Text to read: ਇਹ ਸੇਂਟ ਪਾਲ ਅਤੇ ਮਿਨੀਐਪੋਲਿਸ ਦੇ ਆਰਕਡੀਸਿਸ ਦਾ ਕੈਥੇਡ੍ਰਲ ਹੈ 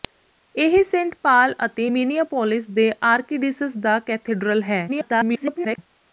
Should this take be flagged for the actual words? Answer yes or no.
yes